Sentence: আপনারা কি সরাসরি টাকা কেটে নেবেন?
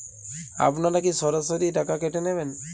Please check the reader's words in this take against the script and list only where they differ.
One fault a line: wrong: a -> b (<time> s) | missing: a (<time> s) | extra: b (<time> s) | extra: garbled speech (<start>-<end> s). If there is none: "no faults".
no faults